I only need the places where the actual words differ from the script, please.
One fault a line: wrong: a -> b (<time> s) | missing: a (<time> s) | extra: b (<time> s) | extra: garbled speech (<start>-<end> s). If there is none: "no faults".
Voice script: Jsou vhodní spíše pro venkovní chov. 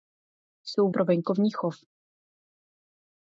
missing: vhodní spíše (0.9 s)